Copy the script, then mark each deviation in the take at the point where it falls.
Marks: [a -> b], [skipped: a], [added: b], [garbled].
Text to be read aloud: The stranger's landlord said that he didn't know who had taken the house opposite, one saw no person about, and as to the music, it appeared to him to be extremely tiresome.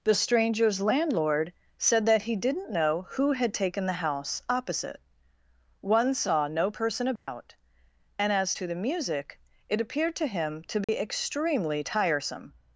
The stranger's landlord said that he didn't know who had taken the house opposite, one saw no person about, and as to the music, it appeared to him to be extremely tiresome.